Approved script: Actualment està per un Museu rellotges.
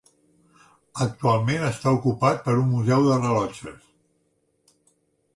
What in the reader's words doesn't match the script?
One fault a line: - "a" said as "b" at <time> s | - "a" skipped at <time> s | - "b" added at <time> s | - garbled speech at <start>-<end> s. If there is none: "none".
- "ocupat" added at 2.0 s
- "de" added at 3.1 s